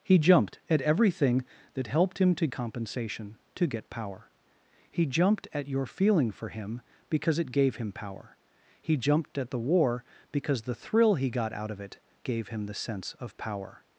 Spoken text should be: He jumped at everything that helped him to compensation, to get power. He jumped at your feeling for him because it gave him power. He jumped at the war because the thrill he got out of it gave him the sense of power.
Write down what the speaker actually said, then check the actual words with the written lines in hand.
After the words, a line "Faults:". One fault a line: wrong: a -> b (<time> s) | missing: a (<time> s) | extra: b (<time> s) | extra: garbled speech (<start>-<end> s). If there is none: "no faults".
He jumped at everything that helped him to compensation, to get power. He jumped at your feeling for him because it gave him power. He jumped at the war because the thrill he got out of it gave him the sense of power.
Faults:
no faults